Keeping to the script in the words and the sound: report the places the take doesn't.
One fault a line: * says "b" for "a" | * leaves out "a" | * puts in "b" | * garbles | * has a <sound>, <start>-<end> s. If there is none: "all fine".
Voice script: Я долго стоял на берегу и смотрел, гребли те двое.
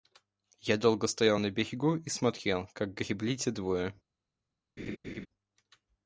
* puts in "как"
* has a laugh, 4.8-5.3 s